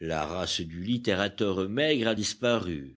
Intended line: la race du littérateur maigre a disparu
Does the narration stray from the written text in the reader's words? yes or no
no